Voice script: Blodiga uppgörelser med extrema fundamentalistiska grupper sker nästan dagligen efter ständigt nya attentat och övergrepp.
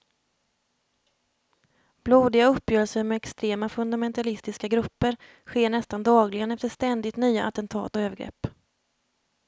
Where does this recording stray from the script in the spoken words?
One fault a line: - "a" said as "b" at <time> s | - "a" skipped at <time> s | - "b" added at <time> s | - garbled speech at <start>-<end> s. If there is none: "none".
none